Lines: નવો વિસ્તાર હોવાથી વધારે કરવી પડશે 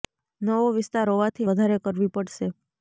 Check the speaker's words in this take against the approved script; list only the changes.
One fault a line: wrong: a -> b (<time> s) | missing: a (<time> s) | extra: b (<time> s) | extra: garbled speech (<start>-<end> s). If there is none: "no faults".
no faults